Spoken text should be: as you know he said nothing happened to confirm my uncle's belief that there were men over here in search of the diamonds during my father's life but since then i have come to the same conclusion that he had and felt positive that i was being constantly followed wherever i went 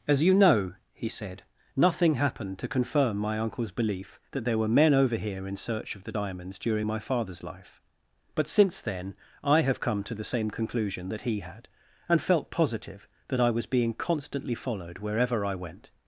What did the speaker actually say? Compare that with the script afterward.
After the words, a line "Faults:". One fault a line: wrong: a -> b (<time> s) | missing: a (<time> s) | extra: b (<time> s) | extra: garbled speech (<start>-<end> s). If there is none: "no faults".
as you know he said nothing happened to confirm my uncle's belief that there were men over here in search of the diamonds during my father's life but since then i have come to the same conclusion that he had and felt positive that i was being constantly followed wherever i went
Faults:
no faults